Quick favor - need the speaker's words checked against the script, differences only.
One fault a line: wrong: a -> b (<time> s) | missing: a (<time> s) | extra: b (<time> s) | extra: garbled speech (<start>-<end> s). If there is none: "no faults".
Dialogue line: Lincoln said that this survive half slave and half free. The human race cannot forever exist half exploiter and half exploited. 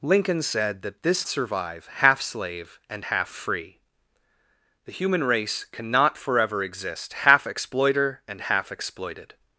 no faults